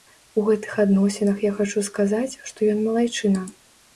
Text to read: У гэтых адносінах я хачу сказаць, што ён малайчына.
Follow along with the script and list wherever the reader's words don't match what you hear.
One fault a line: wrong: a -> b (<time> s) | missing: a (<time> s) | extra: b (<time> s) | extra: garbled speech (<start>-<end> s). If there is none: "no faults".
no faults